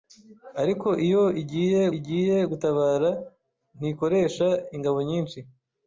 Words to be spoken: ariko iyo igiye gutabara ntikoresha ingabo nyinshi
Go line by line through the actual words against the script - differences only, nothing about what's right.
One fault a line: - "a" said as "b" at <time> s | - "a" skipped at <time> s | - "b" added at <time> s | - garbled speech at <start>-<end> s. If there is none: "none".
- "igiye" added at 2.0 s